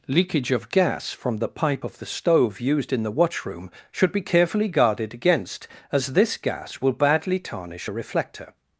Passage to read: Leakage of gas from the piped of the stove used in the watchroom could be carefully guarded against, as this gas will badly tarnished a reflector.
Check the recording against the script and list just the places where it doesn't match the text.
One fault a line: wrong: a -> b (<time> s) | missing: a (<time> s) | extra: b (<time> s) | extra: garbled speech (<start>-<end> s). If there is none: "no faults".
wrong: piped -> pipe (1.5 s)
wrong: could -> should (3.9 s)
wrong: tarnished -> tarnish (7.4 s)